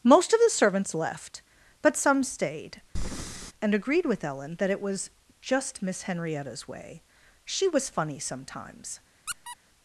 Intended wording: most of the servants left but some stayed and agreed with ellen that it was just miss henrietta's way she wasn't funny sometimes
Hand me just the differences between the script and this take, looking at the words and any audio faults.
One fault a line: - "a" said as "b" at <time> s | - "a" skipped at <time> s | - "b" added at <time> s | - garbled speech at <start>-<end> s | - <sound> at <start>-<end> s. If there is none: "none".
- breath at 3.0-3.5 s
- "wasn't" said as "was" at 7.7 s
- squeak at 9.3-9.6 s